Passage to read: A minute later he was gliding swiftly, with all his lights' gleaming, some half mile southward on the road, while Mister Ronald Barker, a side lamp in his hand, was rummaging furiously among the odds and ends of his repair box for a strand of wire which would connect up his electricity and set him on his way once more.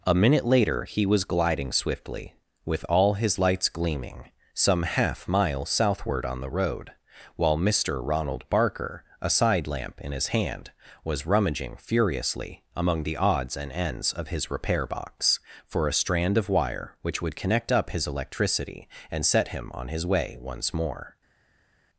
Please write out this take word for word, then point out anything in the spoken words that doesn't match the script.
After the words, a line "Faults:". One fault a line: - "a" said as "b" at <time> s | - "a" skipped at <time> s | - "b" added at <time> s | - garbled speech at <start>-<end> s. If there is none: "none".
A minute later he was gliding swiftly, with all his lights' gleaming, some half mile southward on the road, while Mister Ronald Barker, a side lamp in his hand, was rummaging furiously among the odds and ends of his repair box for a strand of wire which would connect up his electricity and set him on his way once more.
Faults:
none